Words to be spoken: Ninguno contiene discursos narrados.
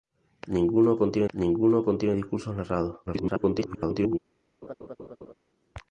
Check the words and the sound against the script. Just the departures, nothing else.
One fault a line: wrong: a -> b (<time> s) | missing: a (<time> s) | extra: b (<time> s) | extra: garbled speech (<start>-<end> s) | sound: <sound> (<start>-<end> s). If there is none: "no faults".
extra: ninguno contiene (1.3 s)
extra: garbled speech (3.1-4.2 s)
sound: laugh (4.6-5.3 s)